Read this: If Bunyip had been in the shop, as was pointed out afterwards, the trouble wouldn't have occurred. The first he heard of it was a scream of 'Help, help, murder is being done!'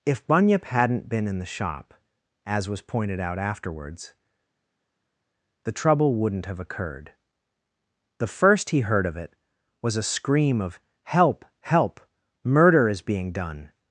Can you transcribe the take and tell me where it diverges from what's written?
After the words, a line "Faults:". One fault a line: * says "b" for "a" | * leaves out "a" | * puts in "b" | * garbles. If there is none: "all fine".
If Bunyip hadn't been in the shop, as was pointed out afterwards, the trouble wouldn't have occurred. The first he heard of it was a scream of 'Help, help, murder is being done!'
Faults:
* says "hadn't" for "had"